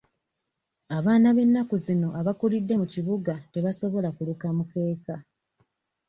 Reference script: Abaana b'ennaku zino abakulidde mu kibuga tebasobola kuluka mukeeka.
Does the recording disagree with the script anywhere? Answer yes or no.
no